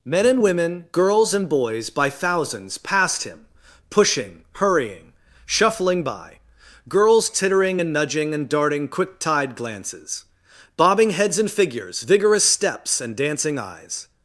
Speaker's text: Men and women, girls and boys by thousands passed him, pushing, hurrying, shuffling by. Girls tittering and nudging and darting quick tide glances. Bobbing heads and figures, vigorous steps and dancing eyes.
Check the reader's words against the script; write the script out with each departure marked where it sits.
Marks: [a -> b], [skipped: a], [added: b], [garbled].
Men and women, girls and boys by thousands passed him, pushing, hurrying, shuffling by. Girls tittering and nudging and darting quick tide glances. Bobbing heads and figures, vigorous steps and dancing eyes.